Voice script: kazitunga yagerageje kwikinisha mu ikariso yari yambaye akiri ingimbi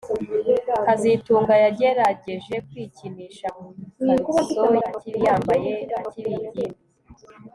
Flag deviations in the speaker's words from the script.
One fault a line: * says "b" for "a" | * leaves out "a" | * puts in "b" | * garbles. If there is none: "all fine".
* says "akiri" for "yari"